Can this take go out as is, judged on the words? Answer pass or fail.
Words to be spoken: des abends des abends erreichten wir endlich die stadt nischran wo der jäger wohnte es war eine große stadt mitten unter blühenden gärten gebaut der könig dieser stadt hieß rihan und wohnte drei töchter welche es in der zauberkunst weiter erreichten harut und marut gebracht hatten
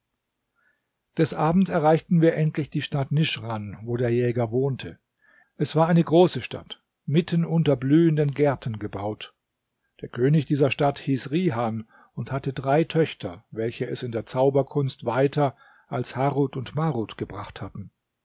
fail